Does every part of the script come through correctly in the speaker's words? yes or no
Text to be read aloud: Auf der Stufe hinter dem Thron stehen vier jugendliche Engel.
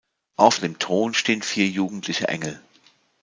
no